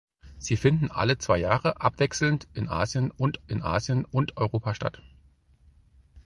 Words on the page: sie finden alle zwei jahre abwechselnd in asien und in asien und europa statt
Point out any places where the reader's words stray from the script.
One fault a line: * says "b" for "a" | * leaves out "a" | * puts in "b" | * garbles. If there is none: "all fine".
all fine